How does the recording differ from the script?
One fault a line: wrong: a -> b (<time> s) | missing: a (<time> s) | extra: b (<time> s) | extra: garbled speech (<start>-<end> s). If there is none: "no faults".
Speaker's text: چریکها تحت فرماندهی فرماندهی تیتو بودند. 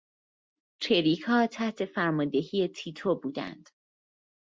missing: فرماندهی (2.7 s)